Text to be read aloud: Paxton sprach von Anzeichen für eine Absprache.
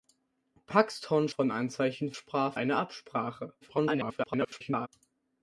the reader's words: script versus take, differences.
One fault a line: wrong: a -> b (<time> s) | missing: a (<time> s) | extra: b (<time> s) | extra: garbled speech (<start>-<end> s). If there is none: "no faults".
missing: sprach (1.3 s)
wrong: für -> sprach (2.1 s)
extra: garbled speech (3.6-4.9 s)